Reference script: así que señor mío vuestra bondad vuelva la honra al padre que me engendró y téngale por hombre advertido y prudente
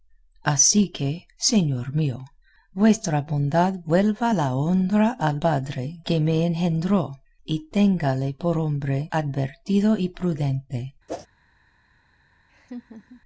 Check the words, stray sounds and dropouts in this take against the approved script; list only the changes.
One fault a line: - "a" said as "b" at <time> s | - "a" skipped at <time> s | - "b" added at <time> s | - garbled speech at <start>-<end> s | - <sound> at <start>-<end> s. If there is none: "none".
- whoosh at 11.1-11.3 s
- laugh at 12.5-13.2 s